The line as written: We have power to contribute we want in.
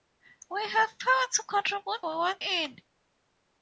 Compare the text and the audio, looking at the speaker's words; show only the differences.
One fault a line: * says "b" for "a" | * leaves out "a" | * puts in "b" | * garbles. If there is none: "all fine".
all fine